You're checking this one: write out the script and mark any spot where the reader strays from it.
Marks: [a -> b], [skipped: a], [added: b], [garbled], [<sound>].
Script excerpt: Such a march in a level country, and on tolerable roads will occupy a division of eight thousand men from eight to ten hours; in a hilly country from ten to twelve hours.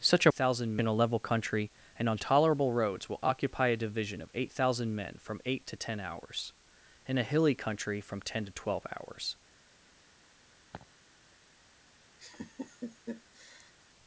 Such a [march -> thousand] in a level country, and on tolerable roads will occupy a division of eight thousand men from eight to ten hours; in a hilly country from ten to twelve hours. [laugh] [laugh]